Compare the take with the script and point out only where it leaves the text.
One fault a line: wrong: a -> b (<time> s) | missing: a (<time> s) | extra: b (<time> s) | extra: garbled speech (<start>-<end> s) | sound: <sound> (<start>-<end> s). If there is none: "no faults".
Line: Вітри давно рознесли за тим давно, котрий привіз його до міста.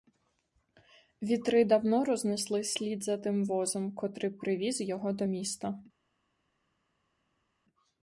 extra: слід (2.6 s)
wrong: давно -> возом (3.5 s)